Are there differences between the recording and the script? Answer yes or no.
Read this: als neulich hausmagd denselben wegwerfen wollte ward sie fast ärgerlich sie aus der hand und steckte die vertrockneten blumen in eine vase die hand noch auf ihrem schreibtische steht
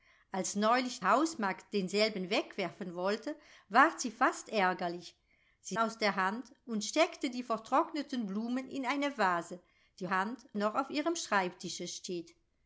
no